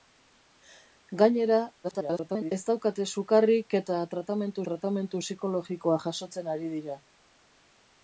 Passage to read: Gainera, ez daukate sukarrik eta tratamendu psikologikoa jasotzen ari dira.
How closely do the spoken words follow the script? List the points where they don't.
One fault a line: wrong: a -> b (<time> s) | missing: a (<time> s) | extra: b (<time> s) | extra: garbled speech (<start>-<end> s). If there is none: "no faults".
extra: garbled speech (1.8-2.5 s)
extra: tratamendu (4.7 s)